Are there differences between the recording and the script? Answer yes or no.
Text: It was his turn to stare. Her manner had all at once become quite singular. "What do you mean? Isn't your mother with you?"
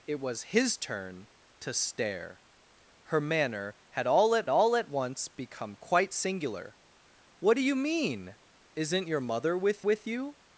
yes